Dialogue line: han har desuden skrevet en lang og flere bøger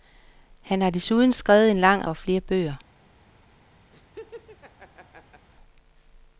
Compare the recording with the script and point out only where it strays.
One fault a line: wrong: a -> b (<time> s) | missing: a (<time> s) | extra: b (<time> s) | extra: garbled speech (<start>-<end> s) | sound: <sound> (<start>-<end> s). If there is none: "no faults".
sound: laugh (3.9-5.5 s)